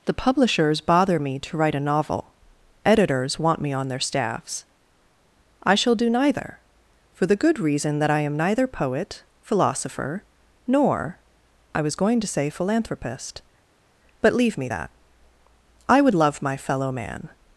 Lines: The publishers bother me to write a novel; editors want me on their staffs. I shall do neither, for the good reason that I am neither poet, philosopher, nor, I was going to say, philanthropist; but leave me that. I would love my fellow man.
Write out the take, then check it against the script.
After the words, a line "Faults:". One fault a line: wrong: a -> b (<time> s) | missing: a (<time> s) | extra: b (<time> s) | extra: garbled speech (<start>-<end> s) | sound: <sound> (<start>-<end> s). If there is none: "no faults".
The publishers bother me to write a novel; editors want me on their staffs. I shall do neither, for the good reason that I am neither poet, philosopher, nor, I was going to say, philanthropist; but leave me that. I would love my fellow man.
Faults:
no faults